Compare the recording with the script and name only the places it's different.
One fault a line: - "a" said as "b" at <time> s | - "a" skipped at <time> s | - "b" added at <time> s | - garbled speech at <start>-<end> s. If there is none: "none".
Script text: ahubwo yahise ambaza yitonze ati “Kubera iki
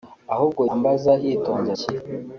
- "yahise" skipped at 0.6 s
- "ati Kubera" skipped at 1.7 s